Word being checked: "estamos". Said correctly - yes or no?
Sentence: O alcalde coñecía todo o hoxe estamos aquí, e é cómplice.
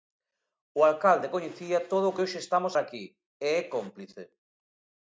yes